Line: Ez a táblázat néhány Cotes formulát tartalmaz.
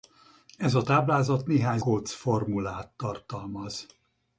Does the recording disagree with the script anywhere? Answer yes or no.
no